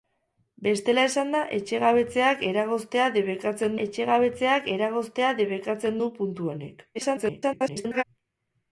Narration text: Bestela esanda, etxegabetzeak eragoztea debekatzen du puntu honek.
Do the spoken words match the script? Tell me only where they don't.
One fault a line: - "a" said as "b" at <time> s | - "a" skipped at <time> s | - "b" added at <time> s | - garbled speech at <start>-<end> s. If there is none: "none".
- "etxegabetzeak eragoztea debekatzen" added at 3.8 s
- garbled speech at 6.9-8.0 s